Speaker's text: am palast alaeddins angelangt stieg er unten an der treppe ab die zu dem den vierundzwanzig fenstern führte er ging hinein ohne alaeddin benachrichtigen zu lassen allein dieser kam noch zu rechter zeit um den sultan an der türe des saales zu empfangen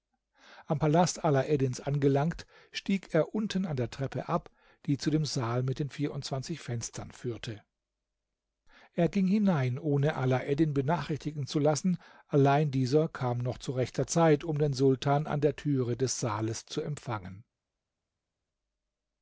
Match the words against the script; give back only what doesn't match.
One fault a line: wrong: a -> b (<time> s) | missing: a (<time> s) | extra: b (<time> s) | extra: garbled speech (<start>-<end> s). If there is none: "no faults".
extra: saal mit (5.2 s)